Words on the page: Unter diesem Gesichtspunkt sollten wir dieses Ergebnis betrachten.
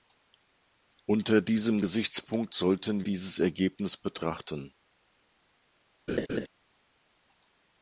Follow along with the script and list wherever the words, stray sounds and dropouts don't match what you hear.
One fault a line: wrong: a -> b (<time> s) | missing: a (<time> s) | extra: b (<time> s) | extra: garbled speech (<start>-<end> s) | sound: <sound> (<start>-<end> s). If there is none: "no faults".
missing: wir (3.0 s)
sound: laugh (6.1-6.5 s)